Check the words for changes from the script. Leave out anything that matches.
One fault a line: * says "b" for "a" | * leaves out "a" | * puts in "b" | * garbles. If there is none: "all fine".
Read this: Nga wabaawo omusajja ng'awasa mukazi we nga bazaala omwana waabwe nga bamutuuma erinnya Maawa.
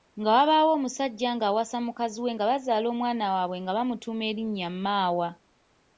all fine